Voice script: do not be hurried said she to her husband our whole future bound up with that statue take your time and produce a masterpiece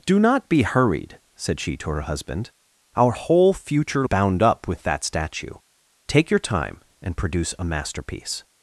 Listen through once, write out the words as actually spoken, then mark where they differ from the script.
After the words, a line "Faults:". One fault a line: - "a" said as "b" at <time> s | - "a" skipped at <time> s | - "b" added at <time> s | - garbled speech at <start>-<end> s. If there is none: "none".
do not be hurried said she to her husband our whole future bound up with that statue take your time and produce a masterpiece
Faults:
none